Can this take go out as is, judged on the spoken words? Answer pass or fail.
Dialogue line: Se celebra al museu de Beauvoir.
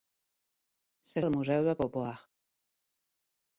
fail